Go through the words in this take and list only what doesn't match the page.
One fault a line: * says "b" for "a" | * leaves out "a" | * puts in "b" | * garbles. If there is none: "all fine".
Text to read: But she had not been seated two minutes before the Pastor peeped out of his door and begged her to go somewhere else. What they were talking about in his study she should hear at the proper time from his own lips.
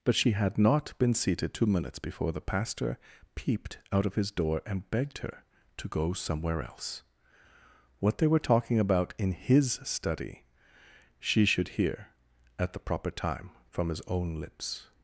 all fine